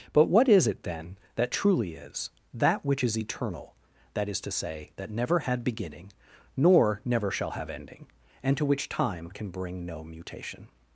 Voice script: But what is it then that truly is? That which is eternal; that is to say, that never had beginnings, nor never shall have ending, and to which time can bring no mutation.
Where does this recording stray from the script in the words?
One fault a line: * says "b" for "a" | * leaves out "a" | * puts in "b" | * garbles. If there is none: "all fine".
* says "beginning" for "beginnings"